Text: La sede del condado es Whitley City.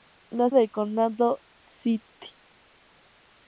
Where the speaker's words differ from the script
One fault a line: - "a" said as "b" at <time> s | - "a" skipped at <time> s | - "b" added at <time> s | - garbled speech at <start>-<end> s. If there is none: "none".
- "sede" skipped at 0.5 s
- "es Whitley" skipped at 1.4 s